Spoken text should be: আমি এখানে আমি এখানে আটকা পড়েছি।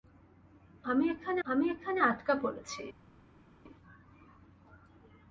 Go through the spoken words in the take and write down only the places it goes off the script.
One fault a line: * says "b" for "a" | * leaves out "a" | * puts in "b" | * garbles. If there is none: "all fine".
all fine